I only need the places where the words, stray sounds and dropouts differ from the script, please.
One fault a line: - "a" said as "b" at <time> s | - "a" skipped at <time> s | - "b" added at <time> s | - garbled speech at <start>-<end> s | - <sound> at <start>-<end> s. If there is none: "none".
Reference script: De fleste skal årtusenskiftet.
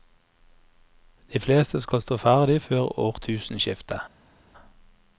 - "stå ferdig før" added at 2.0 s